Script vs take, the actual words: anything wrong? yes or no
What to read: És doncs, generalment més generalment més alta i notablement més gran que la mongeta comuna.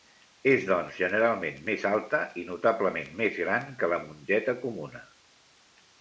yes